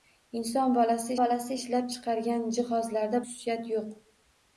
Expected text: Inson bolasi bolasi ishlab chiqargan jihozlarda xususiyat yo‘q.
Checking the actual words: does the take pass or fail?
pass